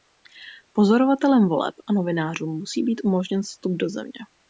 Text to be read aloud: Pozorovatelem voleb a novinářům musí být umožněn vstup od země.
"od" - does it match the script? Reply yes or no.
no